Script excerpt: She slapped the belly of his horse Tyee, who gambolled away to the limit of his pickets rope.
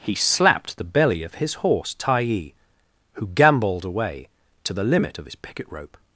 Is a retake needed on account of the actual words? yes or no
yes